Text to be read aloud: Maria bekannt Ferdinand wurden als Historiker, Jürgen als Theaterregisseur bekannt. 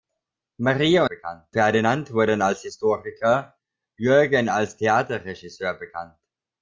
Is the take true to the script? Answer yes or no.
yes